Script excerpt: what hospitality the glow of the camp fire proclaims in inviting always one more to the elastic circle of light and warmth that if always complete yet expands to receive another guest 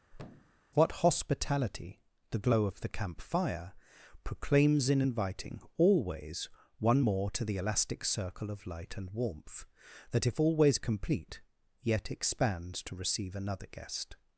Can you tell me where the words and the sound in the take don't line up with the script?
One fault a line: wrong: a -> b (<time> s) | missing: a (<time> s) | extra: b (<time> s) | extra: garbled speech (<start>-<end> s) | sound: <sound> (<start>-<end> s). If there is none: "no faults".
sound: thud (0.1-0.6 s)